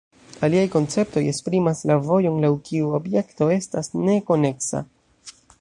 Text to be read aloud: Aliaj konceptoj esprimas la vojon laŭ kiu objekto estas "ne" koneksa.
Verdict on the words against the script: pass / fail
pass